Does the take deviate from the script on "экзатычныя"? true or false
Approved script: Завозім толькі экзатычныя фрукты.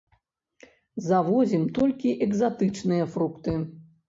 false